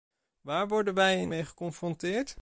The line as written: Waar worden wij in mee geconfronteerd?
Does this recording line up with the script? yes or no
yes